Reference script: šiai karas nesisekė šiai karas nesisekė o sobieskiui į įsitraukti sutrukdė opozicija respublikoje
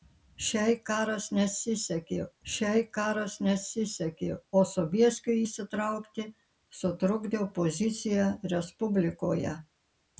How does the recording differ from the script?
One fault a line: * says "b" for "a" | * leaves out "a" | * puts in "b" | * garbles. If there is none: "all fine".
all fine